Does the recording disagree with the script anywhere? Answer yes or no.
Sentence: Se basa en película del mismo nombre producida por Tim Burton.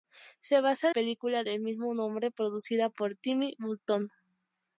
no